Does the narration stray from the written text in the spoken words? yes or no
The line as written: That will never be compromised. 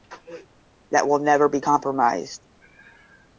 no